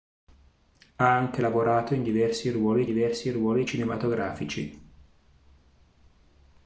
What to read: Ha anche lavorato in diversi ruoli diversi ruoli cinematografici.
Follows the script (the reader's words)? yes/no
yes